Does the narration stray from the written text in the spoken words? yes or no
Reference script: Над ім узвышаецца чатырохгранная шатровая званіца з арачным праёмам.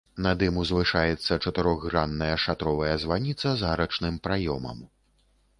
no